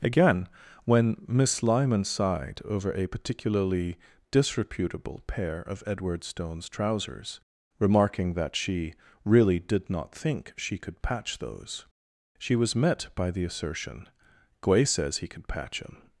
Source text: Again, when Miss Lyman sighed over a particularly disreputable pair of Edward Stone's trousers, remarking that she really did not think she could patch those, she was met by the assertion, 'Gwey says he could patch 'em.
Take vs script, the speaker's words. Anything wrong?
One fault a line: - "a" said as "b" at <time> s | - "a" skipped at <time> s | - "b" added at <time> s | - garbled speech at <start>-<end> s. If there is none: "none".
none